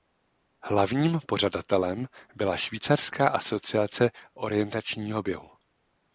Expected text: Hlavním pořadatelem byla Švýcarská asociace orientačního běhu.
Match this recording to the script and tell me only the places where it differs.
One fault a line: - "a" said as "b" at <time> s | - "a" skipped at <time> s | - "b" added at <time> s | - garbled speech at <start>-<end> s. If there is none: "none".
none